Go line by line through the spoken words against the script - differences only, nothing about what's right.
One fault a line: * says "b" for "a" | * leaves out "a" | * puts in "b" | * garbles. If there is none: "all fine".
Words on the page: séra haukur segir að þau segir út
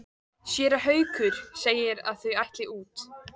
* says "ætli" for "segir"